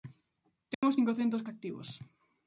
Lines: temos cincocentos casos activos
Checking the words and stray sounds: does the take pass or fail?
fail